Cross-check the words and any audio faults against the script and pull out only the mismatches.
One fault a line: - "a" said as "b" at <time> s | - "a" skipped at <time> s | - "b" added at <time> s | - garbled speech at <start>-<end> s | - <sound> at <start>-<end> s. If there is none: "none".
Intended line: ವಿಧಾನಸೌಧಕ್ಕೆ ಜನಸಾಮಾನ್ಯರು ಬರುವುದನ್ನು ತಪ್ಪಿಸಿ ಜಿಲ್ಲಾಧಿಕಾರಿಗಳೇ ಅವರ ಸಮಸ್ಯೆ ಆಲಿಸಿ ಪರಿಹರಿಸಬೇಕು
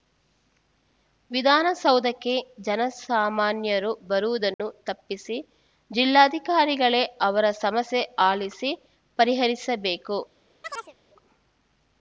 - dropout at 4.5-4.6 s
- chirp at 10.6-10.9 s